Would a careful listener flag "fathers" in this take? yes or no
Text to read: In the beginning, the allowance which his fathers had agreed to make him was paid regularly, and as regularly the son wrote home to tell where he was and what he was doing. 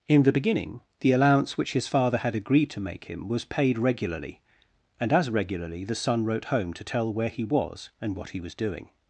yes